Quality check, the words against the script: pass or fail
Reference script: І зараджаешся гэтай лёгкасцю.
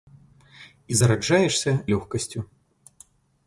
fail